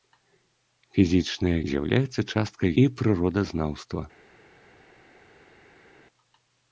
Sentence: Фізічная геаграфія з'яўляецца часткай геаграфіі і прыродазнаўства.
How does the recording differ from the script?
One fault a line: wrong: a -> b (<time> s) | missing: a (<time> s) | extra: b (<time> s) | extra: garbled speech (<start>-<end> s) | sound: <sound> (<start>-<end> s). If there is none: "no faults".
missing: геаграфія (1.5 s)
missing: геаграфіі (2.7 s)